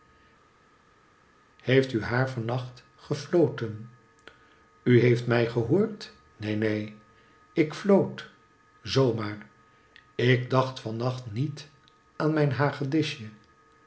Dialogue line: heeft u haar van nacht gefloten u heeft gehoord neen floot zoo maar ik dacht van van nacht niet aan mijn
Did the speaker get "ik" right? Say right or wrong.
right